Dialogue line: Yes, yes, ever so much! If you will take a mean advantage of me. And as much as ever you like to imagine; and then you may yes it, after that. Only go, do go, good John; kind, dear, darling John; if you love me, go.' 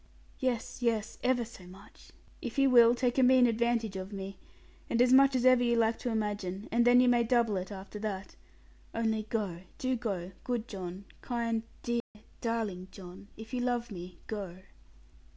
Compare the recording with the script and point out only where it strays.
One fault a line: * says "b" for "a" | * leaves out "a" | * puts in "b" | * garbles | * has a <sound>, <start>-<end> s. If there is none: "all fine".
* says "double" for "yes"
* has a dropout, 12.0-12.1 s